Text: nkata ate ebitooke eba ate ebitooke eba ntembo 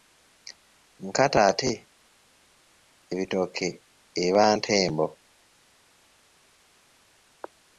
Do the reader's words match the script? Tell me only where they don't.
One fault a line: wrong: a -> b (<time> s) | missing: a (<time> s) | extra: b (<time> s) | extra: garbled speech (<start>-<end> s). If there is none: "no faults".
missing: ate ebitooke eba (4.4 s)